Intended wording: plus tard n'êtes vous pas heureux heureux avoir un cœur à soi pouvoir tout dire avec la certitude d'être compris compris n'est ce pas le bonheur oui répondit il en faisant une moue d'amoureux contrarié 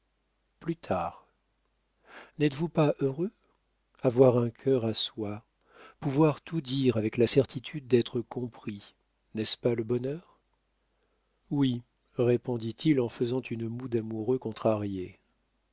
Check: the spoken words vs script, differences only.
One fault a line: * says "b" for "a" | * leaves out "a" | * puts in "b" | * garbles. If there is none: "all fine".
* leaves out "heureux"
* leaves out "compris"